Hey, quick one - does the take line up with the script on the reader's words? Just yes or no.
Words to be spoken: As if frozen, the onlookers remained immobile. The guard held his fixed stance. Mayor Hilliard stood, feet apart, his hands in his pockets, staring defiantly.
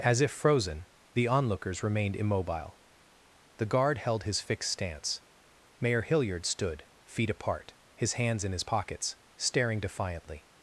yes